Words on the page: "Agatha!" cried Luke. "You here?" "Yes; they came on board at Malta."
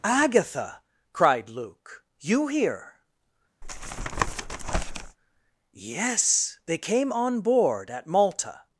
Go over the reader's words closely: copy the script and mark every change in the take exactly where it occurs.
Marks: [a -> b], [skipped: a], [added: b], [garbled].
"Agatha!" cried Luke. "You here?" "Yes; they came on board at Malta."